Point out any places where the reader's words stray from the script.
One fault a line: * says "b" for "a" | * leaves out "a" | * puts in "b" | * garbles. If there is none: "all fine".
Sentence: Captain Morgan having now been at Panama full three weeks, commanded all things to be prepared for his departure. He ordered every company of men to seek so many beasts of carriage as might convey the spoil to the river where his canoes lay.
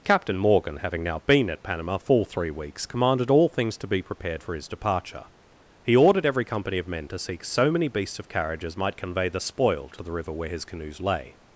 all fine